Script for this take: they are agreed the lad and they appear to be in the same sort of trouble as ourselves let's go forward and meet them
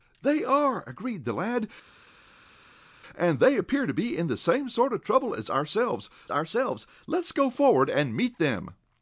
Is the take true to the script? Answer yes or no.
no